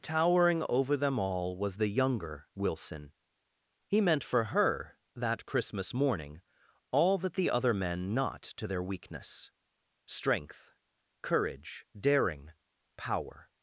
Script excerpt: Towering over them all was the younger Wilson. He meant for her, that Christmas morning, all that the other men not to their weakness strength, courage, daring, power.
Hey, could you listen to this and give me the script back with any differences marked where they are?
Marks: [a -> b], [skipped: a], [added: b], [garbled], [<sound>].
Towering over them all was the younger Wilson. He meant for her, that Christmas morning, all that the other men not to their weakness strength, courage, daring, power.